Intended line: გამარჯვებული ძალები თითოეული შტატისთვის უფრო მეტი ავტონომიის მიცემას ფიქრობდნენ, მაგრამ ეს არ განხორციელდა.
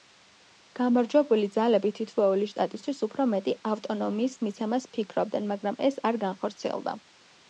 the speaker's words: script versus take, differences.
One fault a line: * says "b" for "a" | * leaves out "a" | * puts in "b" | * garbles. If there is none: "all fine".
all fine